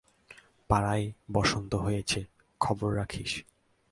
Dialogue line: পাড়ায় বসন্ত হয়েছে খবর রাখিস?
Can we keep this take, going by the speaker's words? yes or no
yes